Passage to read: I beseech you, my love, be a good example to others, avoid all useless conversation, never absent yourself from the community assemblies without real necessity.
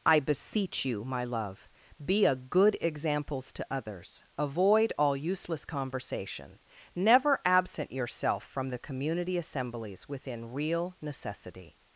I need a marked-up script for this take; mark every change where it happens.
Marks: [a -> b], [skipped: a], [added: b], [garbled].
I beseech you, my love, be a good [example -> examples] to others, avoid all useless conversation, never absent yourself from the community assemblies [without -> within] real necessity.